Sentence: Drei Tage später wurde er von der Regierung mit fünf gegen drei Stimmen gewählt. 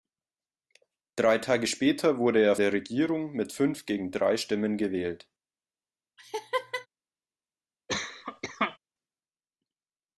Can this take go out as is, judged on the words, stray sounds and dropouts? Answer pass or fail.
fail